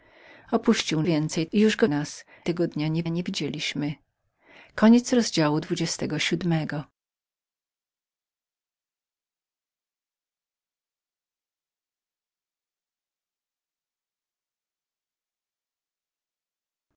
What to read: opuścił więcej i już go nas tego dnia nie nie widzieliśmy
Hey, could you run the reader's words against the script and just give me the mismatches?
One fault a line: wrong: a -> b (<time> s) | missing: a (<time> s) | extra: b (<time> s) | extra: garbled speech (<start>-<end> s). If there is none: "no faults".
no faults